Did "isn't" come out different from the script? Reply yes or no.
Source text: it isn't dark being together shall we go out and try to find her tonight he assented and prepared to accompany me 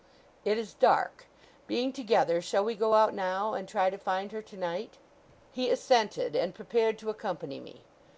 yes